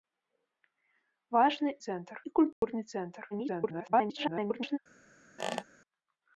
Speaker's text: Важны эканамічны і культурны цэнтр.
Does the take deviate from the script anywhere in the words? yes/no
yes